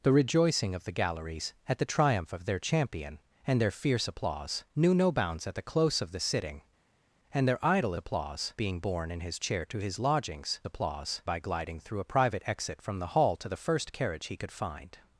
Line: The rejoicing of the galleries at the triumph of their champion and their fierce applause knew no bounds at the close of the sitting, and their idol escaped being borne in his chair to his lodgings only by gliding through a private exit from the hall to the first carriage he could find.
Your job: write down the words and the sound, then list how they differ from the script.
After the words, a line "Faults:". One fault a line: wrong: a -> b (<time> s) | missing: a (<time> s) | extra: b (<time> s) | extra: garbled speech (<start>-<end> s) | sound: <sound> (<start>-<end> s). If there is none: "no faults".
The rejoicing of the galleries at the triumph of their champion and their fierce applause knew no bounds at the close of the sitting, and their idol applause being borne in his chair to his lodgings applause by gliding through a private exit from the hall to the first carriage he could find.
Faults:
wrong: escaped -> applause (8.0 s)
wrong: only -> applause (10.6 s)